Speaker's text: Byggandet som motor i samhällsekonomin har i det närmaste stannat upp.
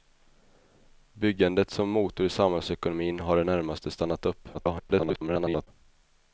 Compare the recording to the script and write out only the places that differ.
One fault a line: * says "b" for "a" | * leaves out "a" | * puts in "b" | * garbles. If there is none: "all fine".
* garbles